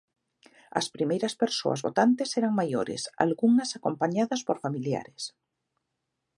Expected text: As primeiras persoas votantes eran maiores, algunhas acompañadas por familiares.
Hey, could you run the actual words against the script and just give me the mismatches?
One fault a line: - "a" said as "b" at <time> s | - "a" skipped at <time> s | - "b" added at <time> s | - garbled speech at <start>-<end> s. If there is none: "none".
none